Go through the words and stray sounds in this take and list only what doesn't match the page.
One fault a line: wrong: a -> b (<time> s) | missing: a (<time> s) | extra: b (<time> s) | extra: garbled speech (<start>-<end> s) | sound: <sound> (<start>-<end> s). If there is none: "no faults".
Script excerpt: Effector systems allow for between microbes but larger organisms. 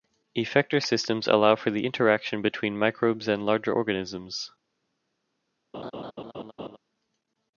extra: the interaction (1.7 s)
wrong: but -> and (3.3 s)
sound: laugh (5.7-6.8 s)